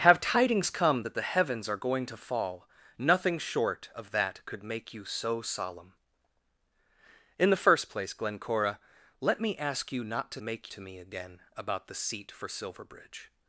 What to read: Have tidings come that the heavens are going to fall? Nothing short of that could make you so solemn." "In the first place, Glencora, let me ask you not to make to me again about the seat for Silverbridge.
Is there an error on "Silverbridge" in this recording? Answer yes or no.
no